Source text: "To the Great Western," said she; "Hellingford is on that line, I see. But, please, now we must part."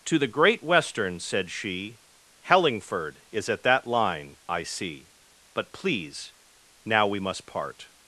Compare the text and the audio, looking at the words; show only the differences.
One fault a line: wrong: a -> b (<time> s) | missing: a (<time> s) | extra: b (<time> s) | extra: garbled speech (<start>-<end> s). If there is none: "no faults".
wrong: on -> at (3.5 s)